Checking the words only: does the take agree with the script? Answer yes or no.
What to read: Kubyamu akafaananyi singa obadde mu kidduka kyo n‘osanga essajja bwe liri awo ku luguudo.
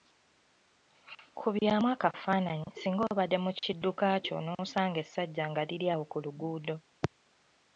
no